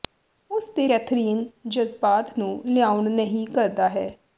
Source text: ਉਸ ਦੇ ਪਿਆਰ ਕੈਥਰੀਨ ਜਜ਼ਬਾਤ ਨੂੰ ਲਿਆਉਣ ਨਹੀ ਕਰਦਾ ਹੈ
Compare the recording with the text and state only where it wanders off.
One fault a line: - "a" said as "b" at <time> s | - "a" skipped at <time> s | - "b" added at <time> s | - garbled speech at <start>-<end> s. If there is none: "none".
- "ਪਿਆਰ" skipped at 0.9 s